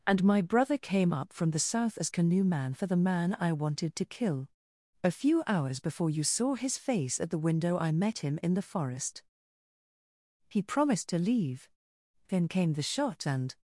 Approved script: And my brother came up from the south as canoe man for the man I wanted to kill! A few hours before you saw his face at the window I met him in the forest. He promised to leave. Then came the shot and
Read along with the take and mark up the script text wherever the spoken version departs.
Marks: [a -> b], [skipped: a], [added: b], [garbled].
And my brother came up from the south as canoe man for the man I wanted to kill! A few hours before you saw his face at the window I met him in the forest. He promised to leave. Then came the shot and